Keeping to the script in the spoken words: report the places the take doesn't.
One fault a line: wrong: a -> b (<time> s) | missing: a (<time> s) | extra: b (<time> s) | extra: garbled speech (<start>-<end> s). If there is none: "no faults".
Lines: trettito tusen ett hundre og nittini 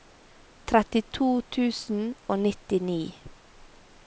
missing: ett hundre (2.0 s)